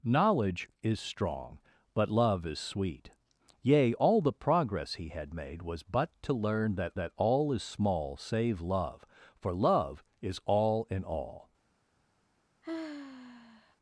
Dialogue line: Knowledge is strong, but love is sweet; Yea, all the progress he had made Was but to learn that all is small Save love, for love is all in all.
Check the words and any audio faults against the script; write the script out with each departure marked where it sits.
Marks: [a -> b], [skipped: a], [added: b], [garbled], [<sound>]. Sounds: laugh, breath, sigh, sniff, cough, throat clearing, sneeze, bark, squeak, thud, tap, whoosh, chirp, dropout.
Knowledge is strong, but love is sweet; Yea, all the progress he had made Was but to learn that [added: that] all is small Save love, for love is all in all. [sigh]